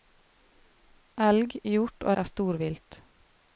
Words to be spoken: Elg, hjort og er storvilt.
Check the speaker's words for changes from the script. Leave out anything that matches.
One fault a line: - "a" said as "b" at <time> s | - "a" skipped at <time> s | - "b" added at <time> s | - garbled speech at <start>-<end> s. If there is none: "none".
none